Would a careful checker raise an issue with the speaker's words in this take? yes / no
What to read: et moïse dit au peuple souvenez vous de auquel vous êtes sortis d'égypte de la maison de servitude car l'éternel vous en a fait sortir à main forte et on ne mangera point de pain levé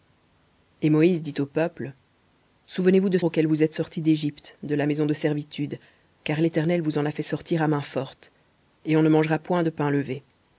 no